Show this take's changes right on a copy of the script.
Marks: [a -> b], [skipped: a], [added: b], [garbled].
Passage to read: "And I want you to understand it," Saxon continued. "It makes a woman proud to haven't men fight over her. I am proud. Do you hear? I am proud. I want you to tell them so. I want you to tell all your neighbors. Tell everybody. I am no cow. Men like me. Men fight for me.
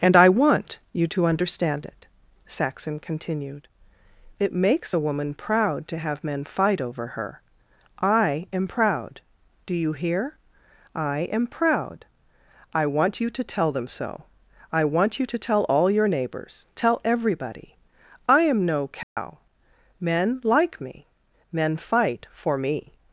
"And I want you to understand it," Saxon continued. "It makes a woman proud to [haven't -> have] men fight over her. I am proud. Do you hear? I am proud. I want you to tell them so. I want you to tell all your neighbors. Tell everybody. I am no cow. Men like me. Men fight for me.